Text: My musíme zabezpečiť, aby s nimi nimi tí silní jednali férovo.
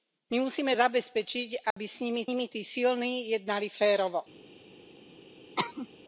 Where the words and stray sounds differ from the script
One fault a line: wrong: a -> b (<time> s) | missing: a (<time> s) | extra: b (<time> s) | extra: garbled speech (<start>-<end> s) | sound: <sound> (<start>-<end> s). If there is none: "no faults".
sound: dropout (1.7-1.8 s)
sound: cough (5.6-5.9 s)